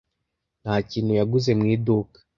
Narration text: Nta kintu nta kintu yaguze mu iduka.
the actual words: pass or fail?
fail